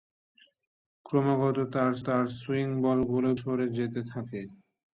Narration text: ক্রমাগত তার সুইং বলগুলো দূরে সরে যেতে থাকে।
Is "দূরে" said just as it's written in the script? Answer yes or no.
no